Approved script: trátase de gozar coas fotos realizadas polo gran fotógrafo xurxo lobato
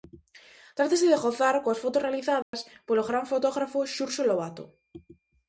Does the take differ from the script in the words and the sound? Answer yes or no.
yes